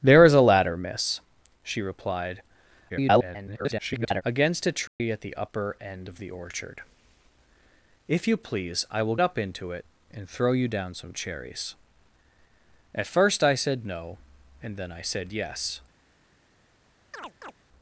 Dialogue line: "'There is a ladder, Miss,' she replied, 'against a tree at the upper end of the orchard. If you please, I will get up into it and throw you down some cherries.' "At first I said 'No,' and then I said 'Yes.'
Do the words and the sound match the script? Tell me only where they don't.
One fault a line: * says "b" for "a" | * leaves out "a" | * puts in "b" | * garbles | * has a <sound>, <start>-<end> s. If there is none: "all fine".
* garbles
* has a dropout, 4.9-5.0 s
* leaves out "get"
* has a chirp, 17.1-17.5 s